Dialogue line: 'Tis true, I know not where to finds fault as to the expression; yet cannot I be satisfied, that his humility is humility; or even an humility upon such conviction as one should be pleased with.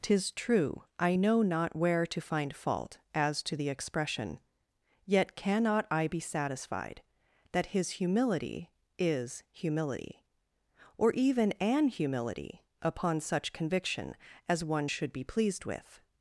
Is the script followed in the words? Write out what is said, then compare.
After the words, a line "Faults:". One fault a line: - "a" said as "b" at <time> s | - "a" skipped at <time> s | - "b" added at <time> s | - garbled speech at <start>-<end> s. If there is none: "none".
'Tis true, I know not where to find fault as to the expression; yet cannot I be satisfied, that his humility is humility; or even an humility upon such conviction as one should be pleased with.
Faults:
- "finds" said as "find" at 2.2 s